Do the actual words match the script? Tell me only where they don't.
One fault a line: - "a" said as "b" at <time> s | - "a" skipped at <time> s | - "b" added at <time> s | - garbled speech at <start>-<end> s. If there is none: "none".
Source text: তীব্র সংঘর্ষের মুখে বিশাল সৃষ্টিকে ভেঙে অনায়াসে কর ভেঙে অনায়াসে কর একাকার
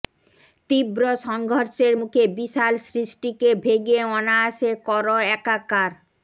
- "ভেঙে অনায়াসে কর" skipped at 5.0 s